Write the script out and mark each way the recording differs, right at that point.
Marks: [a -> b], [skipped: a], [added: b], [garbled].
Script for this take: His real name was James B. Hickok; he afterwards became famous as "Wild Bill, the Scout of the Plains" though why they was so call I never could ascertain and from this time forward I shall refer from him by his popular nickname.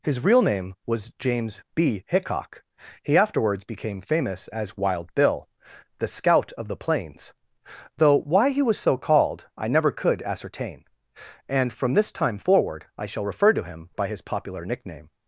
His real name was James B. Hickok; he afterwards became famous as "Wild Bill, the Scout of the Plains" though why [they -> he] was so [call -> called] I never could ascertain and from this time forward I shall refer [from -> to] him by his popular nickname.